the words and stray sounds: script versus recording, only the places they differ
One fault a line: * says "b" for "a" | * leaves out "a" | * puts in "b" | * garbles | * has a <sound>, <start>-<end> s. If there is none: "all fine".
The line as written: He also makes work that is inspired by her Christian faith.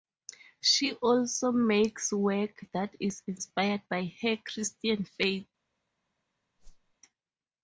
* says "She" for "He"
* has a whoosh, 6.6-6.9 s